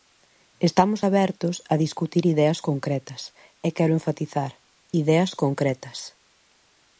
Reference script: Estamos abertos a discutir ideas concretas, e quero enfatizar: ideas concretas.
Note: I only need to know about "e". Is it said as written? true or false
true